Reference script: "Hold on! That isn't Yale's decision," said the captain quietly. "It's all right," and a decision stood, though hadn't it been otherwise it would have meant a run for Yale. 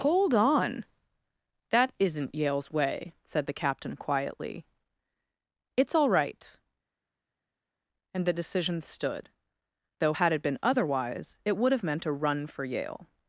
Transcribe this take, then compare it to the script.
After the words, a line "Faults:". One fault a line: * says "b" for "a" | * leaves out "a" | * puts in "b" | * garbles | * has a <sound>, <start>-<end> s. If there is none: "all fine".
"Hold on! That isn't Yale's way," said the captain quietly. "It's all right," and the decision stood, though had it been otherwise it would have meant a run for Yale.
Faults:
* says "way" for "decision"
* says "the" for "a"
* says "had" for "hadn't"